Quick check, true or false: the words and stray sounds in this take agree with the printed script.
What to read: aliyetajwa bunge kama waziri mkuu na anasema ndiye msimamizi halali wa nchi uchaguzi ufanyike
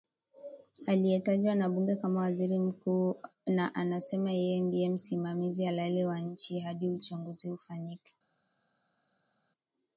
false